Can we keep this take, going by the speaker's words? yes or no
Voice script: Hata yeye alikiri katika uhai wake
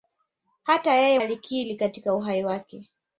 yes